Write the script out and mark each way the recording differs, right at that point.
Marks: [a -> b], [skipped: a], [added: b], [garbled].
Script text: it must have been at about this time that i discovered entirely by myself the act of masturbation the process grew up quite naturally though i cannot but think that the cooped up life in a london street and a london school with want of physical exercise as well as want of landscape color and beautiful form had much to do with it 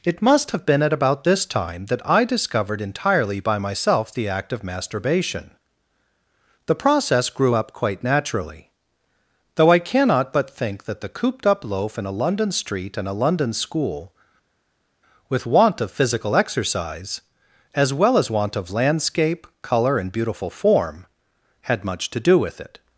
it must have been at about this time that i discovered entirely by myself the act of masturbation the process grew up quite naturally though i cannot but think that the cooped up [life -> loaf] in a london street and a london school with want of physical exercise as well as want of landscape color and beautiful form had much to do with it